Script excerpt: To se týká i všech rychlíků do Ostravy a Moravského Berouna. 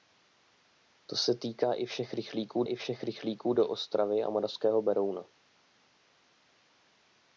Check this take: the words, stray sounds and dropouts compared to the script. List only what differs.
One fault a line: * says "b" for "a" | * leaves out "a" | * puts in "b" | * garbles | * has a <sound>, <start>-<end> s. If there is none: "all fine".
* puts in "i všech rychlíků"